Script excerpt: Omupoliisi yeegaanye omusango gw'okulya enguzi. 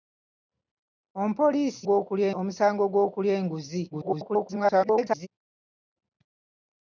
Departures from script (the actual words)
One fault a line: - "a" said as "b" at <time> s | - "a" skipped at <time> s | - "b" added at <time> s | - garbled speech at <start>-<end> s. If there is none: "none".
- "yeegaanye" said as "gw'okulya" at 1.9 s
- garbled speech at 3.9-5.3 s